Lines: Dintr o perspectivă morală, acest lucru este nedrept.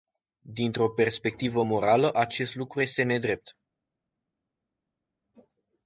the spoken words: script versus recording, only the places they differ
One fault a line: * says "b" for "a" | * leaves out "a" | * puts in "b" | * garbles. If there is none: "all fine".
all fine